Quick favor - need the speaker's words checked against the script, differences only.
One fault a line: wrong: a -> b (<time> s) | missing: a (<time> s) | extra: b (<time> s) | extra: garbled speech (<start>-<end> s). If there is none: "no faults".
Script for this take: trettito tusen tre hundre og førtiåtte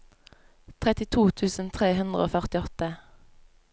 no faults